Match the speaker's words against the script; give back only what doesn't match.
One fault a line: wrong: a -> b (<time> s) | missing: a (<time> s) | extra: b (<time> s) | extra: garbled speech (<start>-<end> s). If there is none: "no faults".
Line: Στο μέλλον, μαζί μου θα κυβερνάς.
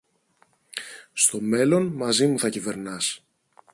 no faults